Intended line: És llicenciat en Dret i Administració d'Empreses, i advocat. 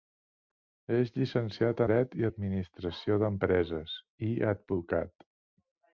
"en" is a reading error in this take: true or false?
true